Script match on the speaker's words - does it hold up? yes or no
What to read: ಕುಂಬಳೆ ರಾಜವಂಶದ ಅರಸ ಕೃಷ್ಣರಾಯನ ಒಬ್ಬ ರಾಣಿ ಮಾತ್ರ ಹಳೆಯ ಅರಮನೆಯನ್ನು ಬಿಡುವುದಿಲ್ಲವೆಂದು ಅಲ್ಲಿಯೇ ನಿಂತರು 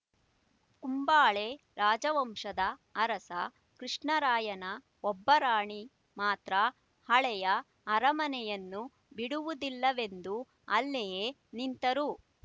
yes